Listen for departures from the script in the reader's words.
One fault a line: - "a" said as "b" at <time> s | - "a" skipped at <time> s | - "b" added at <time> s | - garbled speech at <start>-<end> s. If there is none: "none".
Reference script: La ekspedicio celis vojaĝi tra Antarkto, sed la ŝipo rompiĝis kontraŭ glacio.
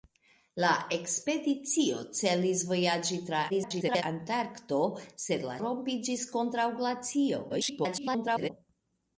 - garbled speech at 3.5-4.0 s
- "ŝipo" skipped at 5.6 s
- garbled speech at 7.5-8.5 s